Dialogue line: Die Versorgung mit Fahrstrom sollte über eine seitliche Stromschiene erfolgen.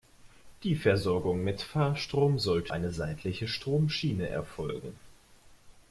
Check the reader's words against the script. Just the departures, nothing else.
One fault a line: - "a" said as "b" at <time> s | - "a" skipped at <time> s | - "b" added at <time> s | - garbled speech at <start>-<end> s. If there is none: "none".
- "über" skipped at 2.7 s